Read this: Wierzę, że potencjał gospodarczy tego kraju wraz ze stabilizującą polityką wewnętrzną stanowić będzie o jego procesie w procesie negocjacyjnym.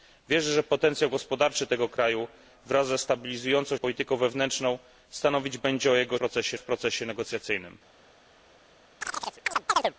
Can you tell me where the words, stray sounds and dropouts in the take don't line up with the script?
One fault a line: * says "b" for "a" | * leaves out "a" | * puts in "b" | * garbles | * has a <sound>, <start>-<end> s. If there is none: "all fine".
* has a chirp, 9.0-9.9 s